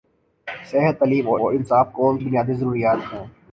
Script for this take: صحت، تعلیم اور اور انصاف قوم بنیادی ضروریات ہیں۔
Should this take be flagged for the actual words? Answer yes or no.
no